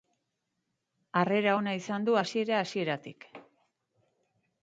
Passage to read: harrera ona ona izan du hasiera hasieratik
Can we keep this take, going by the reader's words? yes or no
no